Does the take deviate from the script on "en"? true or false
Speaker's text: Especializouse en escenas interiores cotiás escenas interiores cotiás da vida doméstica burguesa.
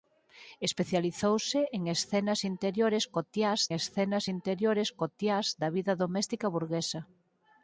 false